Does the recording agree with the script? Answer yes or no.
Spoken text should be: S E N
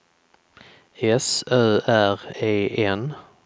no